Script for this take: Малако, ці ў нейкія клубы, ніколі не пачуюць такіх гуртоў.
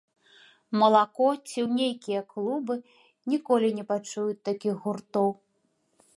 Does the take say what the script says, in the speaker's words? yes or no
yes